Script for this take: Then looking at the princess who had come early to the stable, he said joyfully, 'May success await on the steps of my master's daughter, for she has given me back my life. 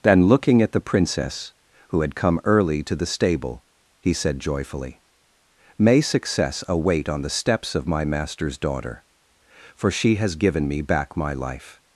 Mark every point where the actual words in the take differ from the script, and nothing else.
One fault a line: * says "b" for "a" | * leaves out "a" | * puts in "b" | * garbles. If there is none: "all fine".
all fine